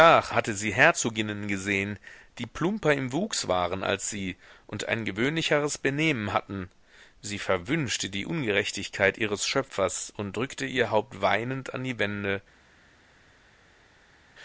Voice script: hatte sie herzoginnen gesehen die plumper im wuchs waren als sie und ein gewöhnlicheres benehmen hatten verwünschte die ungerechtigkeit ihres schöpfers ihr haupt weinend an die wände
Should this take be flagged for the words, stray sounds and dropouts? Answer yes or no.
yes